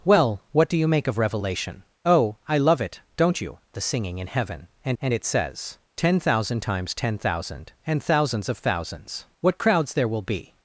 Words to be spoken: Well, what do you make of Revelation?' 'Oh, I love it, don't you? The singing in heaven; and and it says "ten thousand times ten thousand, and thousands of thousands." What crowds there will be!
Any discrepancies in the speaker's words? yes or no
no